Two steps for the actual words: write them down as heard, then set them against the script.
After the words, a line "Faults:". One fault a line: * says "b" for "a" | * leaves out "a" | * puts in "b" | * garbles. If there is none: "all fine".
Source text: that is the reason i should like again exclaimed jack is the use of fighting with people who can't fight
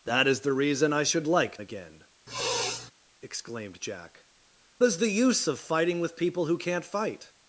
that is the reason i should like again exclaimed jack is the use of fighting with people who can't fight
Faults:
all fine